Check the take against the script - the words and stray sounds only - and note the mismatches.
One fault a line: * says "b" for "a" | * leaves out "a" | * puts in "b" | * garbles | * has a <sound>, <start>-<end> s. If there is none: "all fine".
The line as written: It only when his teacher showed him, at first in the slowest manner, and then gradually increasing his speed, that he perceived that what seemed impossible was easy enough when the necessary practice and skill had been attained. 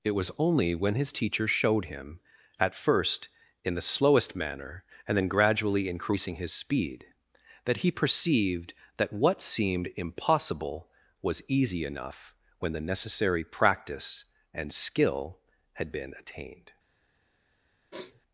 * puts in "was"
* has a sniff, 17.9-18.2 s